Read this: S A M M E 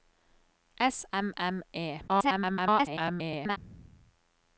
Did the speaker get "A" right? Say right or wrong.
wrong